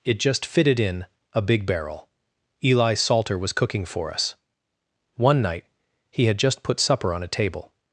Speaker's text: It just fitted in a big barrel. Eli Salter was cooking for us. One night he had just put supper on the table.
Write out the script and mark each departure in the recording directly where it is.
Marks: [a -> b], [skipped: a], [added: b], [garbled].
It just fitted in a big barrel. Eli Salter was cooking for us. One night he had just put supper on [the -> a] table.